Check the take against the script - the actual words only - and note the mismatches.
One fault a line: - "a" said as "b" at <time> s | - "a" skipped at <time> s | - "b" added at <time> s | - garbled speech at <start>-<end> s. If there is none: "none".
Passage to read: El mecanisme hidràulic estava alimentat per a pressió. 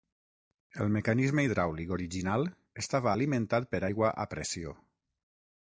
- "original" added at 2.0 s
- "aigua" added at 3.9 s